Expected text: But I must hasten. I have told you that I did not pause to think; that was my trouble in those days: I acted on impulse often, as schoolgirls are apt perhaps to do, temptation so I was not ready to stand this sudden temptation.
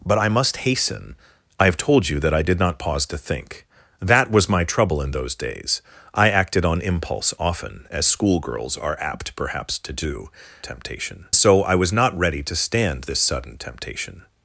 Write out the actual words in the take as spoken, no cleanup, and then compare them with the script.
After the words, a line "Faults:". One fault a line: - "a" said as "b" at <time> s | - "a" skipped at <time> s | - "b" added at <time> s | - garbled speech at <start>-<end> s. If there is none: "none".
But I must hasten. I have told you that I did not pause to think; that was my trouble in those days: I acted on impulse often, as schoolgirls are apt perhaps to do, temptation so I was not ready to stand this sudden temptation.
Faults:
none